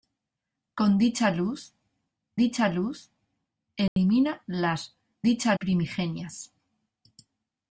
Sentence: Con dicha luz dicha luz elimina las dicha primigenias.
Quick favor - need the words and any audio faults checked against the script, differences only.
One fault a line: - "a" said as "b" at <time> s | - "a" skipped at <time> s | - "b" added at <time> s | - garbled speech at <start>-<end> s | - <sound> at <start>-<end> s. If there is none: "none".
- dropout at 3.9-4.0 s